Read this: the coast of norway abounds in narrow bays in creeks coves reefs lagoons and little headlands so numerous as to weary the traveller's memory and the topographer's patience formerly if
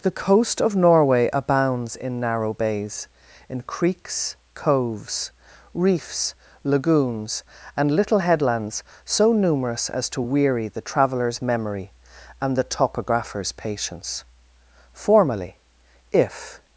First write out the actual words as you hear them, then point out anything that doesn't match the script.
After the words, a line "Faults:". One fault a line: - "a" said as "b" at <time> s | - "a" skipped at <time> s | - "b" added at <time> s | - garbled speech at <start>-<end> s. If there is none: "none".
the coast of norway abounds in narrow bays in creeks coves reefs lagoons and little headlands so numerous as to weary the traveller's memory and the topographer's patience formerly if
Faults:
none